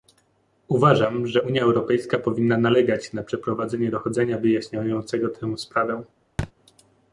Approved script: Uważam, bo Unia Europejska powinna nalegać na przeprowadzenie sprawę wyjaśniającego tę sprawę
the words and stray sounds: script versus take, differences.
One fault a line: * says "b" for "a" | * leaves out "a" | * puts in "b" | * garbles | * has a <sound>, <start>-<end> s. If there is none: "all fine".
* says "że" for "bo"
* says "dochodzenia" for "sprawę"
* has a thud, 6.4-6.5 s